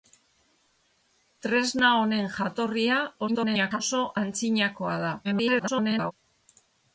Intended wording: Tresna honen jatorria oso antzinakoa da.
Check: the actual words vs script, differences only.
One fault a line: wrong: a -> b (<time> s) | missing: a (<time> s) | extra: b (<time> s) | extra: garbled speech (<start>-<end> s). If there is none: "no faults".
extra: garbled speech (3.3-3.8 s)
extra: garbled speech (5.2-6.1 s)